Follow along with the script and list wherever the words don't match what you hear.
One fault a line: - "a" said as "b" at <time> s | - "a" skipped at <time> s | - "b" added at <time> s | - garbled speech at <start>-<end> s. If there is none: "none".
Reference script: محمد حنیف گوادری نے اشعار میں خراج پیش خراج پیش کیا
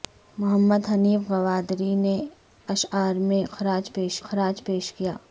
none